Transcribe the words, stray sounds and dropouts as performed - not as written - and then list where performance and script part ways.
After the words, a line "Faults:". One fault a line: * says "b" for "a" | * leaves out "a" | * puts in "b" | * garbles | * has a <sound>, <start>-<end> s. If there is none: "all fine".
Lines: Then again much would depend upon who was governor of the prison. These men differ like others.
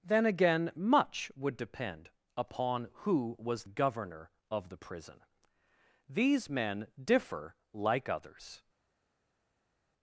Then again much would depend upon who was governor of the prison. These men differ like others.
Faults:
all fine